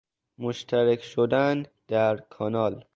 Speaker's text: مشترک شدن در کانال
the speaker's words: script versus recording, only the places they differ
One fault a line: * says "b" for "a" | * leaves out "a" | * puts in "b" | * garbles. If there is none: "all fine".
all fine